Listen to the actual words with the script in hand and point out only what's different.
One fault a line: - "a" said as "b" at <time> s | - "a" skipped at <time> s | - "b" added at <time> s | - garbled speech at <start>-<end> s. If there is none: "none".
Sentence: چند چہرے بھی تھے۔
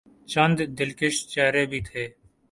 - "دلکش" added at 0.8 s